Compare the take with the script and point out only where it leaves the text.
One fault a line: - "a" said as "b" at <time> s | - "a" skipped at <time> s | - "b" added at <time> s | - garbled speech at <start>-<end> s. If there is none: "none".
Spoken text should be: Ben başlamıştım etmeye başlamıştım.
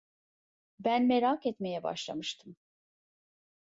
- "başlamıştım" said as "merak" at 1.1 s